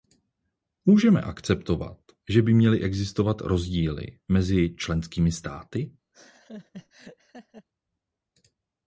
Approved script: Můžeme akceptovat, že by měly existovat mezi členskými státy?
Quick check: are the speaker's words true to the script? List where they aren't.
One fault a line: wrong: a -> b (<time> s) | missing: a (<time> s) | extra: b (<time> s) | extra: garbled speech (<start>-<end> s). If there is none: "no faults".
extra: rozdíly (3.4 s)